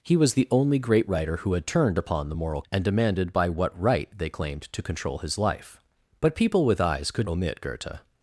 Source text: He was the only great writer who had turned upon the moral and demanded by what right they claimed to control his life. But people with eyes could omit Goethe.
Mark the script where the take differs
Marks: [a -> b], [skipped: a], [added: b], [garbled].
He was the only great writer who had turned upon the moral and demanded by what right they claimed to control his life. But people with eyes could omit Goethe.